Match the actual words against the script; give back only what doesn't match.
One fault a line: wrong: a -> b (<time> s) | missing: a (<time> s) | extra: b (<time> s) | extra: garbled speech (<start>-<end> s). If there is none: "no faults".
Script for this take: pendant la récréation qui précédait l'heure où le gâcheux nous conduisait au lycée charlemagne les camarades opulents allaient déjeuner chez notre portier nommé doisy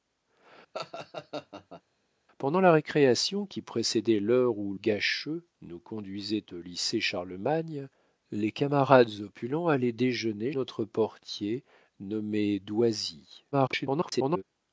missing: le (4.7 s)
missing: chez (10.5 s)
extra: garbled speech (13.5-14.4 s)